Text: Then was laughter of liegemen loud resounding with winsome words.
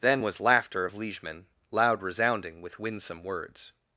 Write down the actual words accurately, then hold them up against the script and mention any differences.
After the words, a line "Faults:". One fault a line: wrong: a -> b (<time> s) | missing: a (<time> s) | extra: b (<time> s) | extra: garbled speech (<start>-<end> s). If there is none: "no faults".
Then was laughter of liegemen loud resounding with winsome words.
Faults:
no faults